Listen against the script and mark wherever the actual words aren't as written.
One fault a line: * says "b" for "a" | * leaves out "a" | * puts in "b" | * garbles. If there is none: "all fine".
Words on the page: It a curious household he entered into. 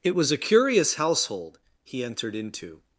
* puts in "was"